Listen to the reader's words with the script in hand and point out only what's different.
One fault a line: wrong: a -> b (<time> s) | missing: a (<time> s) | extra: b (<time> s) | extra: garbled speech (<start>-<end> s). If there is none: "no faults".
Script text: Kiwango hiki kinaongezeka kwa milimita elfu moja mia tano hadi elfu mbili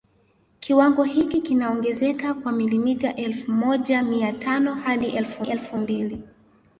extra: elfu (5.4 s)